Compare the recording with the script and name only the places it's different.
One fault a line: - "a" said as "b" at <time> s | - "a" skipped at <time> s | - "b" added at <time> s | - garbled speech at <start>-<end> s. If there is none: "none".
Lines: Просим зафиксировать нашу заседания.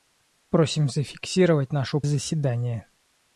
none